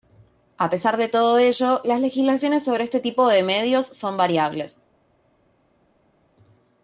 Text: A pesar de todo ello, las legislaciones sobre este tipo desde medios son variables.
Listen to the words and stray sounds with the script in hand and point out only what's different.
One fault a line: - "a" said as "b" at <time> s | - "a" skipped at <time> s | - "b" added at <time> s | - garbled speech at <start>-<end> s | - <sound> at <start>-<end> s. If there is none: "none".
- "desde" said as "de" at 3.3 s